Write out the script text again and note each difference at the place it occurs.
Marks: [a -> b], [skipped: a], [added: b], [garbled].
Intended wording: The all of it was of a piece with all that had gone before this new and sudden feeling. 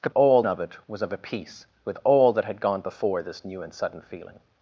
The all of it was of a piece with all that had gone before this new and sudden feeling.